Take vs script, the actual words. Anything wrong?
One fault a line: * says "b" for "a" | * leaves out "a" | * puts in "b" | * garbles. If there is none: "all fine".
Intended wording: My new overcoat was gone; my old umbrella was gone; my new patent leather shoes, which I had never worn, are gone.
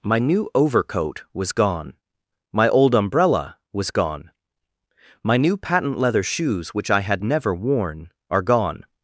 all fine